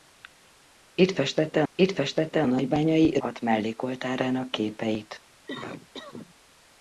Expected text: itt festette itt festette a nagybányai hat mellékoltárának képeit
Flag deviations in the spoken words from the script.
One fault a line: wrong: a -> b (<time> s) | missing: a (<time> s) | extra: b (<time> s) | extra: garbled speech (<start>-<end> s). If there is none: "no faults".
no faults